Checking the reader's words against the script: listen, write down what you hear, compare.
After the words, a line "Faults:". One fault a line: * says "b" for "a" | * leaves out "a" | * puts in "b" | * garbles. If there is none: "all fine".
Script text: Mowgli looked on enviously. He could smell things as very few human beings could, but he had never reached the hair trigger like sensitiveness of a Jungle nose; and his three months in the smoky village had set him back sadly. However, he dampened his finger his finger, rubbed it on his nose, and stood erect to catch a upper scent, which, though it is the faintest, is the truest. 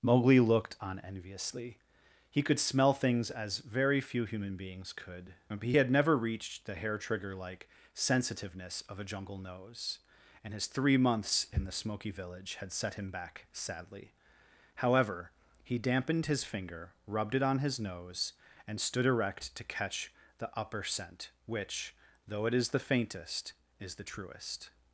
Mowgli looked on enviously. He could smell things as very few human beings could, but he had never reached the hair trigger like sensitiveness of a Jungle nose; and his three months in the smoky village had set him back sadly. However, he dampened his finger, rubbed it on his nose, and stood erect to catch the upper scent, which, though it is the faintest, is the truest.
Faults:
* leaves out "his finger"
* says "the" for "a"